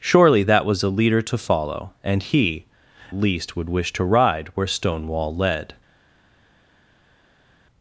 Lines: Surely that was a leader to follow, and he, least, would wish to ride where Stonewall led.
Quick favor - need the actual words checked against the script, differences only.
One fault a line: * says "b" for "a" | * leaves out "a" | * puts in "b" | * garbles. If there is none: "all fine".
all fine